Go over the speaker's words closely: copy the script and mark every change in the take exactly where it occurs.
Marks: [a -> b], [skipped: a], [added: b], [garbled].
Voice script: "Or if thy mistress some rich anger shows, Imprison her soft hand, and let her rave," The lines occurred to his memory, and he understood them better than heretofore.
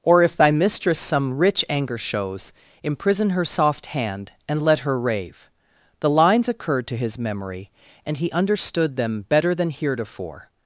"Or if thy mistress some rich anger shows, Imprison her soft hand, and let her rave," The lines occurred to his memory, and he understood them better than heretofore.